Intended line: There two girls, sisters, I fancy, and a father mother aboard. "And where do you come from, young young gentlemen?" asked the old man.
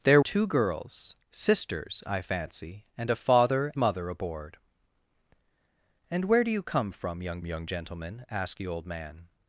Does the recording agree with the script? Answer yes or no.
yes